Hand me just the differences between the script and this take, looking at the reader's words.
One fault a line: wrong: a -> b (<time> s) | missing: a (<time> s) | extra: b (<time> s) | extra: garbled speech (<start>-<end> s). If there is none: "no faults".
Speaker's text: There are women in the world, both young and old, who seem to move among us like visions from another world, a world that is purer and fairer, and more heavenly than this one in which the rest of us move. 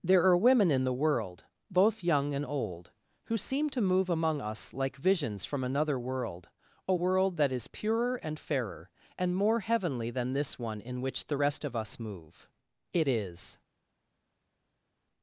extra: It is (12.9 s)